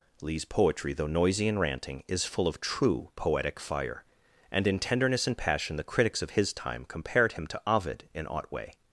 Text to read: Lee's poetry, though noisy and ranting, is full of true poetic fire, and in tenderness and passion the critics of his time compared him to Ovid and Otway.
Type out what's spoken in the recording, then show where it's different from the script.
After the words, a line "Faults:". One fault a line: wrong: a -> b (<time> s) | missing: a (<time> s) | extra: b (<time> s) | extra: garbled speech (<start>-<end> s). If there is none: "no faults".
Lee's poetry, though noisy and ranting, is full of true poetic fire, and in tenderness and passion the critics of his time compared him to Ovid in Otway.
Faults:
wrong: and -> in (8.1 s)